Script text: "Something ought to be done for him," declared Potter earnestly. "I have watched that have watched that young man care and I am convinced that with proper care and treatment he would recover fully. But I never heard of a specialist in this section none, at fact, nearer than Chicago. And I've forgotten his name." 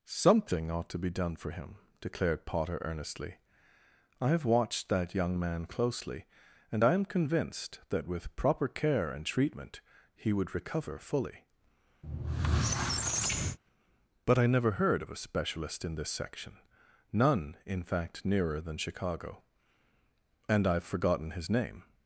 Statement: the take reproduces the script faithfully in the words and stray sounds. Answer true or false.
false